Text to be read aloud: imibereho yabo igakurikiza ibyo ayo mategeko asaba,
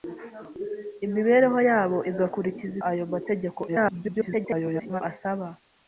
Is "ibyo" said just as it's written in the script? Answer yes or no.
no